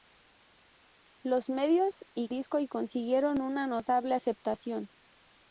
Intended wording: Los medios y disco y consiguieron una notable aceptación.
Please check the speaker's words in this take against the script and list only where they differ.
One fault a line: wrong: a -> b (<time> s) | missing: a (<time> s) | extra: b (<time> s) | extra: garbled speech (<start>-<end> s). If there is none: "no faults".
no faults